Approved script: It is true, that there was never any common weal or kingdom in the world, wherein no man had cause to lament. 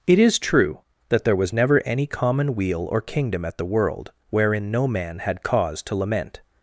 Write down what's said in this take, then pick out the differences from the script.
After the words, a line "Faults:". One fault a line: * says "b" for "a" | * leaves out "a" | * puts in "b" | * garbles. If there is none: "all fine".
It is true, that there was never any common weal or kingdom at the world, wherein no man had cause to lament.
Faults:
* says "at" for "in"